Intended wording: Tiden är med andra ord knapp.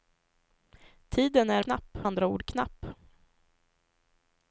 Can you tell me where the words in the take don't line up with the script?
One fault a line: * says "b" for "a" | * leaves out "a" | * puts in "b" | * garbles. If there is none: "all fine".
* says "knapp" for "med"